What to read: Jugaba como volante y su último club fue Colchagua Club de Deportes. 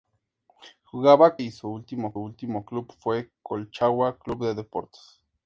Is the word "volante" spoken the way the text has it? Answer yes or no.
no